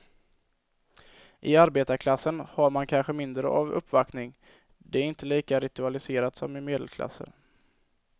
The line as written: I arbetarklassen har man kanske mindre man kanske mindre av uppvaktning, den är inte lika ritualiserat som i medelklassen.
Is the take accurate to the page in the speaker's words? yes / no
no